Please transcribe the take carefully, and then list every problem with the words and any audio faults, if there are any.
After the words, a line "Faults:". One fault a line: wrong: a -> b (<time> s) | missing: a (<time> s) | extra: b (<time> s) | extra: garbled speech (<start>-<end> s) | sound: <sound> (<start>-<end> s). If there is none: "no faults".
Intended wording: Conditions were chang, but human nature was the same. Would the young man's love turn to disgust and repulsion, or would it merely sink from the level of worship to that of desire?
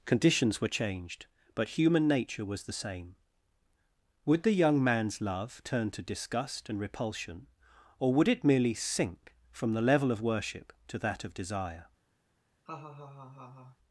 Conditions were changed, but human nature was the same. Would the young man's love turn to disgust and repulsion, or would it merely sink from the level of worship to that of desire?
Faults:
wrong: chang -> changed (0.7 s)
sound: laugh (12.7-13.8 s)